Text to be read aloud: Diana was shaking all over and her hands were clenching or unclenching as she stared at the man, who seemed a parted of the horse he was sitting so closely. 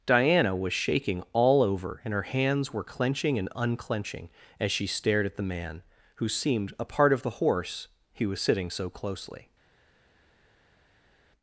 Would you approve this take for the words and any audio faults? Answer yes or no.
no